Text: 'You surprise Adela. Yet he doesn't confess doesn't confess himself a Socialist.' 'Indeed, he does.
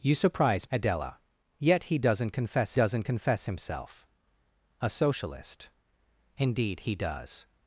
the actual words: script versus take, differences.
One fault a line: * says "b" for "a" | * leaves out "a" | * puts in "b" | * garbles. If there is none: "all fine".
all fine